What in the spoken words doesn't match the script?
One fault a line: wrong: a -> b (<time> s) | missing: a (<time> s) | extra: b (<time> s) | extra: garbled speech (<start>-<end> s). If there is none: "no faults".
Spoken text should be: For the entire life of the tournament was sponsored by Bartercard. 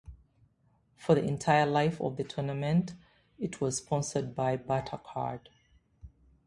extra: it (3.4 s)